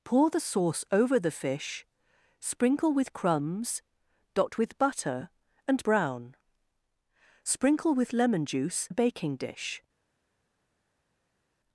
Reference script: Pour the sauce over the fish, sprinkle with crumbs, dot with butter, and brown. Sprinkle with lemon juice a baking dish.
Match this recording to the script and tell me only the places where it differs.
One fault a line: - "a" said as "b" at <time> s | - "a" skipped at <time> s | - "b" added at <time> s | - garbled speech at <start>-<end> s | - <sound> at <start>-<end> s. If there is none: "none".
none